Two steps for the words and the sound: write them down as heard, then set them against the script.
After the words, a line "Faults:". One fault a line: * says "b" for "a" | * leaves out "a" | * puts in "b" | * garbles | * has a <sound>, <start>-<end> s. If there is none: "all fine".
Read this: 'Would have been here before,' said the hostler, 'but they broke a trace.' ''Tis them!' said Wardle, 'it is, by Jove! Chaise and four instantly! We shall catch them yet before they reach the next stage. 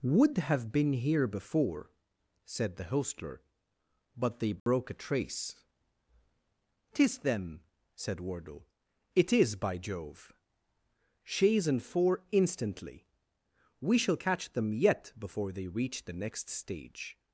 'Would have been here before,' said the hostler, 'but they broke a trace.' ''Tis them!' said Wardle, 'it is, by Jove! Chaise and four instantly! We shall catch them yet before they reach the next stage.
Faults:
* has a dropout, 4.6-4.7 s